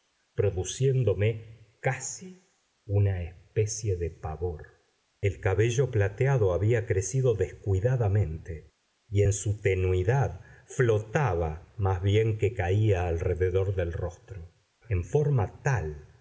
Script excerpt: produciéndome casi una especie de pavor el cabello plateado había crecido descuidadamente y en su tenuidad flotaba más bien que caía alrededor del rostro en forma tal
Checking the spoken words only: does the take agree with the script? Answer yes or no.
yes